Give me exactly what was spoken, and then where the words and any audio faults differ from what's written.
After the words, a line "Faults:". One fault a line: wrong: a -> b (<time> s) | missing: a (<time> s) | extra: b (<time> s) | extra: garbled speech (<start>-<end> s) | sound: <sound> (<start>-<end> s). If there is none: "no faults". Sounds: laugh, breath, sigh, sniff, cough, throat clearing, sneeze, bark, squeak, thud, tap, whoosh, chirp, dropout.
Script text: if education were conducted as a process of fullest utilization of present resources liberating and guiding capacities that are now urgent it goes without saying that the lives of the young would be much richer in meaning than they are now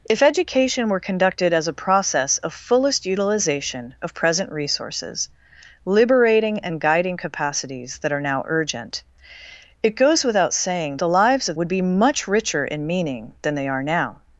if education were conducted as a process of fullest utilization of present resources liberating and guiding capacities that are now urgent it goes without saying the lives of would be much richer in meaning than they are now
Faults:
missing: that (11.0 s)
missing: the young (11.6 s)